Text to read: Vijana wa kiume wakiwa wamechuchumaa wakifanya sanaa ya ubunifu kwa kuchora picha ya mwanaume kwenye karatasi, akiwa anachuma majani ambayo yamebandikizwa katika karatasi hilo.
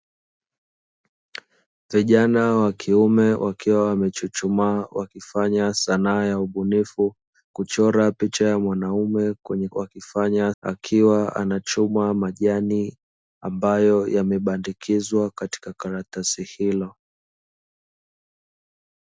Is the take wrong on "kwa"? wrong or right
wrong